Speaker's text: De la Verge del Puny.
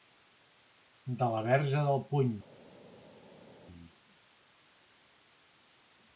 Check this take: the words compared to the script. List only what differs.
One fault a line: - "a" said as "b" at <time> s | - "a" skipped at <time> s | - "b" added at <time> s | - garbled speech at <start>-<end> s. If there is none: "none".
none